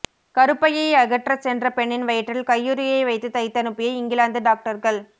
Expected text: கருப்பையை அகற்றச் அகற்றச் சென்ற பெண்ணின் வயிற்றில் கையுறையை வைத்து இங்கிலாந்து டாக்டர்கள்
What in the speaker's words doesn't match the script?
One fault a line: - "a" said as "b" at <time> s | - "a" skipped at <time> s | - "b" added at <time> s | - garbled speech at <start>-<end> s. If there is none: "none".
- "அகற்றச்" skipped at 1.4 s
- "தைத்தனுப்பிய" added at 3.3 s